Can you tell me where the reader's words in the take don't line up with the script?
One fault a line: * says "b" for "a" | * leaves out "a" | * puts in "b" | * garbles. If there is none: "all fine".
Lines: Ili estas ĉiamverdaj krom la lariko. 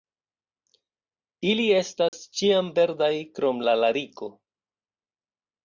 all fine